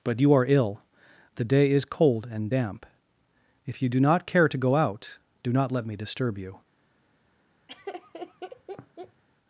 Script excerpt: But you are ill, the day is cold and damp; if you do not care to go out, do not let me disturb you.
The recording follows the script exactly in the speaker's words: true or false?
true